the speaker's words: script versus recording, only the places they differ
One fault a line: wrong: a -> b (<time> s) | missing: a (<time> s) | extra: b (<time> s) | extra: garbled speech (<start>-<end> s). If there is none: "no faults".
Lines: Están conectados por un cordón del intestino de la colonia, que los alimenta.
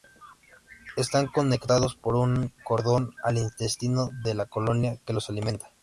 wrong: del -> al (3.2 s)